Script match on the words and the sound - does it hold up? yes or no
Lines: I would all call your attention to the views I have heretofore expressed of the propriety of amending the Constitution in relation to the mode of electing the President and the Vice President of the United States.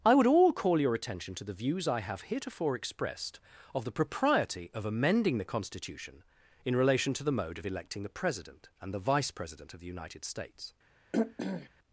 no